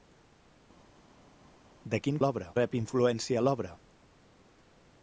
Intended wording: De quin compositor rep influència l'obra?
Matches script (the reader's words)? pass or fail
fail